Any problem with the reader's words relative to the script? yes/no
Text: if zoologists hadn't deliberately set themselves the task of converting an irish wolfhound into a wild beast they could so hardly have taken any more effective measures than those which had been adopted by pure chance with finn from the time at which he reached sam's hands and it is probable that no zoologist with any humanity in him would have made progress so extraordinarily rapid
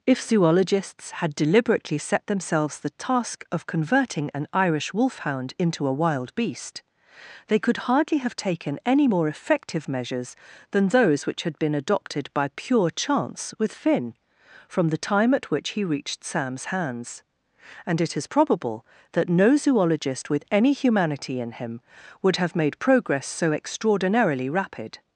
yes